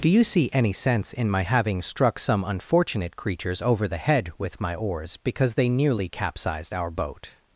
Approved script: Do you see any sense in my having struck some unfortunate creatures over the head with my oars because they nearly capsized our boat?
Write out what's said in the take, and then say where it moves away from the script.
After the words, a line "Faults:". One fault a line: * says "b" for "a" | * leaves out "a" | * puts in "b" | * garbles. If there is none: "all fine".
Do you see any sense in my having struck some unfortunate creatures over the head with my oars because they nearly capsized our boat?
Faults:
all fine